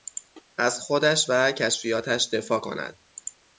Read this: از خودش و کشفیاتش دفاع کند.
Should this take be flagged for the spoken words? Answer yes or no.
no